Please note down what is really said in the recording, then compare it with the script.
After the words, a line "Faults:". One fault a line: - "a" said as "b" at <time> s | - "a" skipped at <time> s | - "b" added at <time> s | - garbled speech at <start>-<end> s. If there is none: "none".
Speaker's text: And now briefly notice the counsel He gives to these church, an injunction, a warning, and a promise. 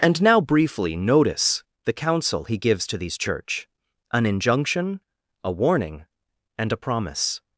And now briefly notice the counsel He gives to these church, an injunction, a warning, and a promise.
Faults:
none